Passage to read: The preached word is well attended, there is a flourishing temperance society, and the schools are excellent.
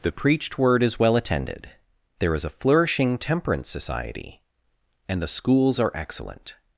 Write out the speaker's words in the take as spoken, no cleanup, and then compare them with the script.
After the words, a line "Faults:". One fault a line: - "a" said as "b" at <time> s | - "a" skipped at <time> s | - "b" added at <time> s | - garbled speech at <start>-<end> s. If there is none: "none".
The preached word is well attended, there is a flourishing temperance society, and the schools are excellent.
Faults:
none